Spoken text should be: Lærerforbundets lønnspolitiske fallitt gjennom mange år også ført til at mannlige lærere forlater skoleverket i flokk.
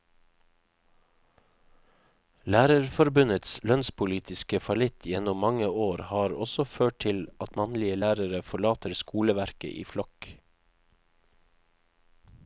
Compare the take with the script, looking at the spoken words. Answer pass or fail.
fail